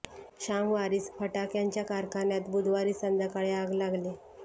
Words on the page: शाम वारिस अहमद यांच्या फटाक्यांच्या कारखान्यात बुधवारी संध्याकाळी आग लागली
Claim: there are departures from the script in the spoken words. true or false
true